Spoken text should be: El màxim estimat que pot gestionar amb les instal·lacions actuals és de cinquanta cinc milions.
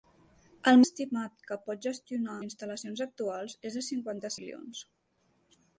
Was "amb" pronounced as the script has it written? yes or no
no